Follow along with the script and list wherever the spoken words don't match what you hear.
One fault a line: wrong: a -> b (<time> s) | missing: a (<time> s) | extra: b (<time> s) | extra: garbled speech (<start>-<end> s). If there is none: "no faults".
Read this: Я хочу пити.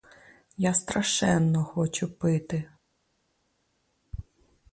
extra: страшенно (0.7 s)